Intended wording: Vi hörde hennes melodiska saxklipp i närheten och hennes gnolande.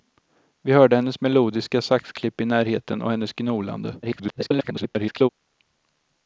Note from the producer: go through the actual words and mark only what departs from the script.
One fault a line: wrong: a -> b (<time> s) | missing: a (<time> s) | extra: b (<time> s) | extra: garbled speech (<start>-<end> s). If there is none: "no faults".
extra: garbled speech (4.0-5.3 s)